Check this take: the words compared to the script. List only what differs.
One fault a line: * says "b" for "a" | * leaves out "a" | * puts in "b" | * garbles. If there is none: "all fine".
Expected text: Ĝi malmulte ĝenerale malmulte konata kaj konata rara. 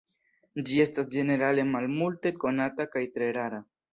* says "estas" for "malmulte"
* says "tre" for "konata"